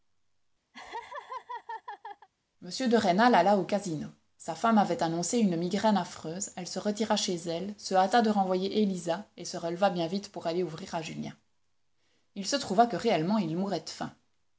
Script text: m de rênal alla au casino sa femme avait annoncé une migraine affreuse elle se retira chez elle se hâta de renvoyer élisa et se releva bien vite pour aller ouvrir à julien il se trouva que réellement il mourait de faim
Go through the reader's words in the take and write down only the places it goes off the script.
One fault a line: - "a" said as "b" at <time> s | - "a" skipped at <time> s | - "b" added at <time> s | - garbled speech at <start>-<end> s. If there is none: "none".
none